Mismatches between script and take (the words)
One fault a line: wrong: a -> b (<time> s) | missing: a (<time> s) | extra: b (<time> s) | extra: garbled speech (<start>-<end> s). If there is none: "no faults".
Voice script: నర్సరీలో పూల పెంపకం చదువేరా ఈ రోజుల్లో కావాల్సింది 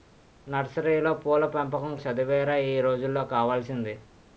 no faults